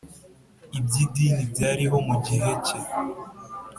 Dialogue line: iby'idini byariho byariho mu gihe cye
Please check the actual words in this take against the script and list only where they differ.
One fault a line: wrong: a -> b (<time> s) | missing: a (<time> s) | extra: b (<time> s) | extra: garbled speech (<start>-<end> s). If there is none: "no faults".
missing: byariho (2.0 s)